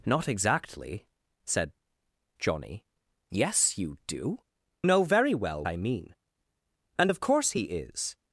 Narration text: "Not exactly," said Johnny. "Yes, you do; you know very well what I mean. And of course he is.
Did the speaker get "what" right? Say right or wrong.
wrong